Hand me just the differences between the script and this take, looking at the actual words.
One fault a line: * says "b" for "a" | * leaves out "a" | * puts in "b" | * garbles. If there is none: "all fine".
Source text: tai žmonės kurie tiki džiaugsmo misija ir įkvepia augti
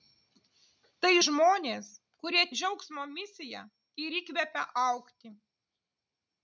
* leaves out "tiki"